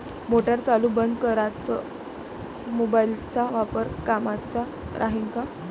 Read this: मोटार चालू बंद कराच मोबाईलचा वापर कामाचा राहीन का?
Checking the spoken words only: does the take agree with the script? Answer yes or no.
yes